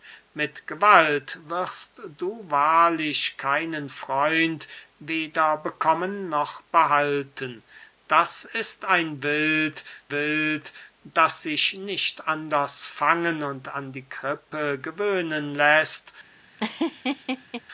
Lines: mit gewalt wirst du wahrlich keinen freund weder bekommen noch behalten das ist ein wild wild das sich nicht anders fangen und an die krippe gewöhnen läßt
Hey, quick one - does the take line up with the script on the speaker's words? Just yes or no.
yes